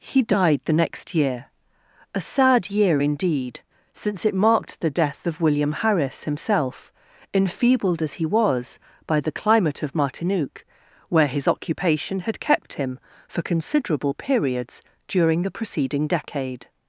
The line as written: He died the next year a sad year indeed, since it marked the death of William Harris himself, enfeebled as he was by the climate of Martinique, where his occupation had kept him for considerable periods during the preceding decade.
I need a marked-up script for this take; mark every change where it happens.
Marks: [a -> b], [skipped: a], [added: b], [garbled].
He died the next year a sad year indeed, since it marked the death of William Harris himself, enfeebled as he was by the climate of Martinique, where his occupation had kept him for considerable periods during the preceding decade.